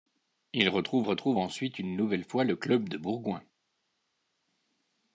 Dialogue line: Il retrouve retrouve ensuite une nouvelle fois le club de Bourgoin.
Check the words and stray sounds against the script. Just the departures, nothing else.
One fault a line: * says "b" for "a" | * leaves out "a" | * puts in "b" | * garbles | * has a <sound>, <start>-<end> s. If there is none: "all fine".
all fine